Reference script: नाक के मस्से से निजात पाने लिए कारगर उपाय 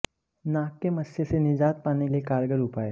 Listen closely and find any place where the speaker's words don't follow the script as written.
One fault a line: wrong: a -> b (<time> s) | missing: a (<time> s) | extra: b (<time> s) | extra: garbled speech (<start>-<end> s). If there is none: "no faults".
no faults